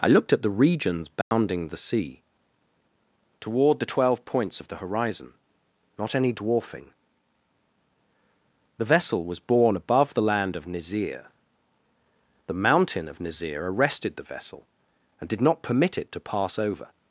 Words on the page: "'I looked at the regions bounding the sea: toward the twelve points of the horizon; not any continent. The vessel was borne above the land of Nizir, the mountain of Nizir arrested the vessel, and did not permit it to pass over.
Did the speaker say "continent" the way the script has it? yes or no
no